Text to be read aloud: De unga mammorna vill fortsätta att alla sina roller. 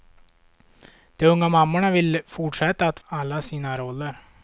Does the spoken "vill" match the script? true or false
true